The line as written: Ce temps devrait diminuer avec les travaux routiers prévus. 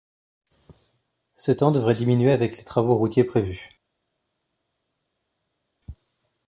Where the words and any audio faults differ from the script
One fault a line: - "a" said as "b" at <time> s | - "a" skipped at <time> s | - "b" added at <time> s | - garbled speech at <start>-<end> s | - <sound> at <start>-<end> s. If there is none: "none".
none